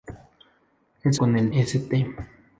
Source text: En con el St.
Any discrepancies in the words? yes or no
no